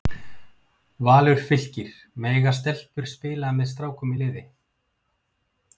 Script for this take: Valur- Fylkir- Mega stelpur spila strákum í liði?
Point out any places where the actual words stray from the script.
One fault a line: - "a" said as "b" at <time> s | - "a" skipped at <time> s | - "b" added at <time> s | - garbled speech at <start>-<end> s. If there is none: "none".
- "með" added at 3.6 s